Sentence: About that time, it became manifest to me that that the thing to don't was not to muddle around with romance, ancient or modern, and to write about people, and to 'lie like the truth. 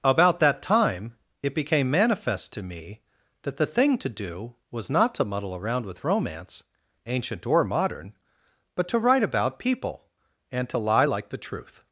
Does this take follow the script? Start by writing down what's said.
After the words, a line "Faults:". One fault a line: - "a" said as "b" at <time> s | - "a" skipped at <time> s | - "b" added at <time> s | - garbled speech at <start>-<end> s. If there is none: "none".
About that time, it became manifest to me that the thing to do was not to muddle around with romance, ancient or modern, but to write about people, and to 'lie like the truth.
Faults:
- "that" skipped at 3.6 s
- "don't" said as "do" at 4.1 s
- "and" said as "but" at 8.8 s